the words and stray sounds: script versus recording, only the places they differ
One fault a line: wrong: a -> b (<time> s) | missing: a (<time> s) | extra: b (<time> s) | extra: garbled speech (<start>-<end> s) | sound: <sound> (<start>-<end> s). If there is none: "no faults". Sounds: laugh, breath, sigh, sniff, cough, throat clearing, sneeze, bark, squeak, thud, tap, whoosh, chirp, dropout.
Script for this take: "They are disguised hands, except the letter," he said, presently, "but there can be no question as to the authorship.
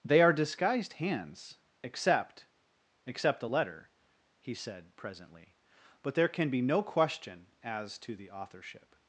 extra: except (3.0 s)